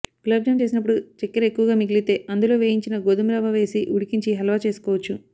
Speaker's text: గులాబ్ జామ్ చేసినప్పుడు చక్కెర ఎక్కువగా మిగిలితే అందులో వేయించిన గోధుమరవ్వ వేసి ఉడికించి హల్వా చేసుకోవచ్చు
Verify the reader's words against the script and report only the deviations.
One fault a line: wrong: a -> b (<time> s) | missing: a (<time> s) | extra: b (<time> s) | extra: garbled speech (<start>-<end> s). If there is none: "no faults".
no faults